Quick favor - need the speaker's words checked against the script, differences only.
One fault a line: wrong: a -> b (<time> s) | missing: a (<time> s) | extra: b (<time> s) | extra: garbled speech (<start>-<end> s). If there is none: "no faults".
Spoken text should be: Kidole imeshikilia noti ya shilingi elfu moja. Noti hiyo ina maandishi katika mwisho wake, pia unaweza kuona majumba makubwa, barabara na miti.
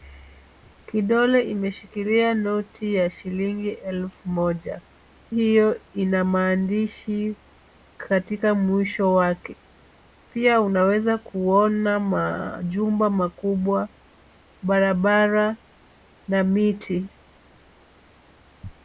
missing: Noti (4.8 s)